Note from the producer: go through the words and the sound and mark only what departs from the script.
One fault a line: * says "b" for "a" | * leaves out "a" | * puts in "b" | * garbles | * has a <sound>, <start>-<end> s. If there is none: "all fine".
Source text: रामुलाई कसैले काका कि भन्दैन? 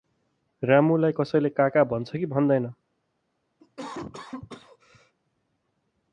* puts in "भन्छ"
* has a cough, 3.6-5.1 s